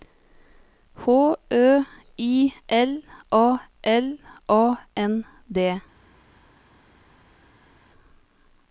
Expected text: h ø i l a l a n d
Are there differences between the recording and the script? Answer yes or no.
no